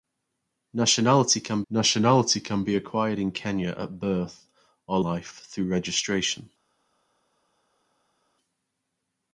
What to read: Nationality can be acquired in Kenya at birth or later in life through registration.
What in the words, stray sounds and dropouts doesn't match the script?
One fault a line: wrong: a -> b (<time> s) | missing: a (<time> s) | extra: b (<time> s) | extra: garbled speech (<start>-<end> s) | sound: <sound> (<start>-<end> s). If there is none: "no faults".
extra: nationality can (1.7 s)
missing: later in (5.0 s)